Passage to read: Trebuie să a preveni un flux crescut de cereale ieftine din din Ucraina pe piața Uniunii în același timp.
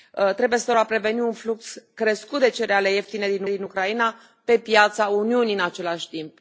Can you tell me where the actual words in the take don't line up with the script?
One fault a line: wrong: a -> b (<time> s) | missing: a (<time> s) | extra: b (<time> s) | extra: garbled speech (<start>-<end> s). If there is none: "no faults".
no faults